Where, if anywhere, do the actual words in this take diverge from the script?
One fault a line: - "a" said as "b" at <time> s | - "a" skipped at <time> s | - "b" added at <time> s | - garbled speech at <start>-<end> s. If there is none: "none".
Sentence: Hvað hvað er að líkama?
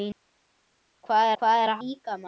none